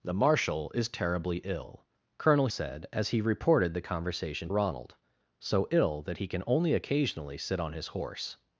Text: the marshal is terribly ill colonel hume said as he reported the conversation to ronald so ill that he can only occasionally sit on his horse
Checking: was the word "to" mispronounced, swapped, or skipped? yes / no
yes